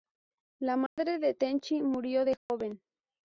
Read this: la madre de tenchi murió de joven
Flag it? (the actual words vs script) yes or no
no